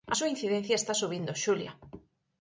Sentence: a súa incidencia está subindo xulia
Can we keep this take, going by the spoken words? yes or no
yes